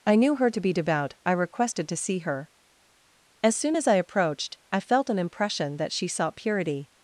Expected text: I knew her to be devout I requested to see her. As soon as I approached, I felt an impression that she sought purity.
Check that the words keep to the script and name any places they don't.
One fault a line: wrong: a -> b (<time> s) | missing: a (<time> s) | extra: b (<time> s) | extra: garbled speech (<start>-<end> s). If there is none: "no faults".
no faults